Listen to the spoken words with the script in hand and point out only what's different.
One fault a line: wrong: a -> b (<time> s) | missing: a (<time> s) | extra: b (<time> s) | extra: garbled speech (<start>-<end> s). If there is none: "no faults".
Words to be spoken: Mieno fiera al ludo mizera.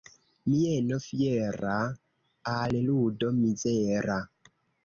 no faults